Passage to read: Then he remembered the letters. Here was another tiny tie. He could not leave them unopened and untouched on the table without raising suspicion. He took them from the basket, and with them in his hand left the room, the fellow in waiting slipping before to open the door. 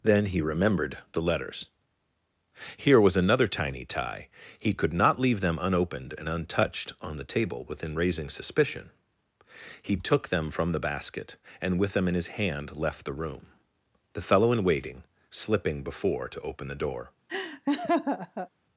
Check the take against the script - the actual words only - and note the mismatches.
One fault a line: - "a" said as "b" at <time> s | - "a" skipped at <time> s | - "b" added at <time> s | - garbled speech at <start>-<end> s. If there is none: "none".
- "without" said as "within" at 7.7 s